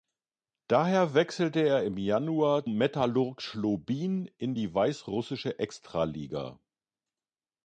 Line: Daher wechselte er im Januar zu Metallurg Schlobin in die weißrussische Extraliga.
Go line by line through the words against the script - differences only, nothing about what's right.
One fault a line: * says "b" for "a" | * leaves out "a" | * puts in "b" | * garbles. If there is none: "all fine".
* leaves out "zu"